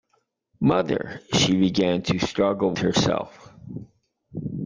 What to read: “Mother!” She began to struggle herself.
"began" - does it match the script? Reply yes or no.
yes